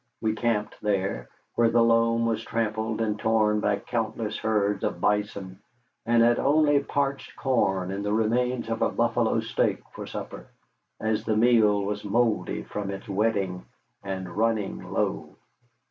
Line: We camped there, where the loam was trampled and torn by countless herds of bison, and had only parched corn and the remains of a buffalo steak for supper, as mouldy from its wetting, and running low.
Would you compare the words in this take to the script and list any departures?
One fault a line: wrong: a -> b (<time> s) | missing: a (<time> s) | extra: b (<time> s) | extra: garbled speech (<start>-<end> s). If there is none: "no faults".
extra: the meal was (11.2 s)